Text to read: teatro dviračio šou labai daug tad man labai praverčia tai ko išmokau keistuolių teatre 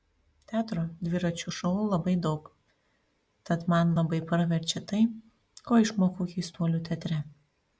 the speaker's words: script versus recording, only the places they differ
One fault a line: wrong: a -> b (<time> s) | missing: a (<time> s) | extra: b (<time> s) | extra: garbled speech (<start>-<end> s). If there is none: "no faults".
no faults